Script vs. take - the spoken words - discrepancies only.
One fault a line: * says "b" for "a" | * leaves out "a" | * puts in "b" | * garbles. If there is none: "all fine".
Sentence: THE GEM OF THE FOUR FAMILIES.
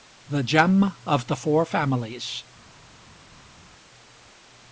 all fine